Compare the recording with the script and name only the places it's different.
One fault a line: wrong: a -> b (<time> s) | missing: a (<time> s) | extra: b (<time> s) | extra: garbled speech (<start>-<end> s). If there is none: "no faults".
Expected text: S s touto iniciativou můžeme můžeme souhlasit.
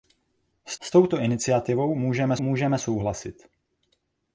no faults